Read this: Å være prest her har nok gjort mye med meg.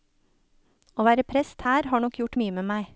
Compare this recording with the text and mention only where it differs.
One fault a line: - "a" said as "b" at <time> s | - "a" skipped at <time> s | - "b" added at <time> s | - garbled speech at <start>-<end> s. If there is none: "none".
none